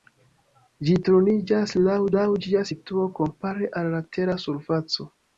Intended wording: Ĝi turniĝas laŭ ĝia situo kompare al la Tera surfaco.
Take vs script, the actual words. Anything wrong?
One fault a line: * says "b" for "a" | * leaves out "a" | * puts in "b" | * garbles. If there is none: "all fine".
* puts in "laŭ"